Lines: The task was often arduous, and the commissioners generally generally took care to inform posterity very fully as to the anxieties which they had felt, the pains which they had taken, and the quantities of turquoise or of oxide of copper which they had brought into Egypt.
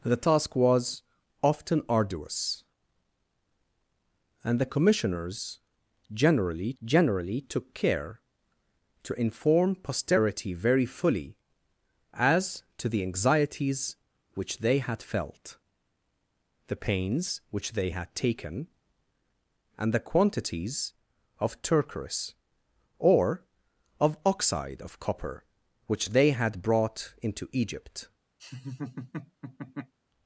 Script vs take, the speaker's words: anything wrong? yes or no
no